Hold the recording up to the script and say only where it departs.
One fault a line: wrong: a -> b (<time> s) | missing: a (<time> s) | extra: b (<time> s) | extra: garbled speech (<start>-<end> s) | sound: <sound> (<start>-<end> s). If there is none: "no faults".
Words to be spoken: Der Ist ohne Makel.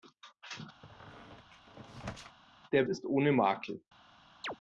sound: squeak (0.8-2.4 s)
sound: chirp (4.4-4.6 s)